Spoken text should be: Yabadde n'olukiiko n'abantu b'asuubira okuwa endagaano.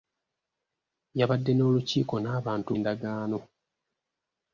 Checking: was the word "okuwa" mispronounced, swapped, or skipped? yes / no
yes